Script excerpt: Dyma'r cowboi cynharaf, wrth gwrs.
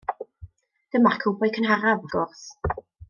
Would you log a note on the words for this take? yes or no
yes